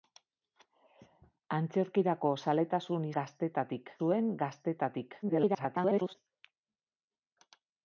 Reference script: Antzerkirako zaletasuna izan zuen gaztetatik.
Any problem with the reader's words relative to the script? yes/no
yes